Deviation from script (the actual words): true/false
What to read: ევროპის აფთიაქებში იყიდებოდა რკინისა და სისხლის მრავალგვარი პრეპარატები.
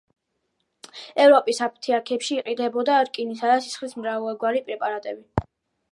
false